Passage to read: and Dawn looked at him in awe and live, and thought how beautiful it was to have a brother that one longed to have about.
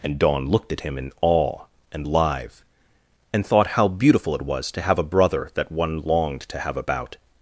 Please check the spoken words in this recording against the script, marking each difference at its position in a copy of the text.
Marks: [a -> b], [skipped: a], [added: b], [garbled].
and Dawn looked at him in awe and live, and thought how beautiful it was to have a brother that one longed to have about.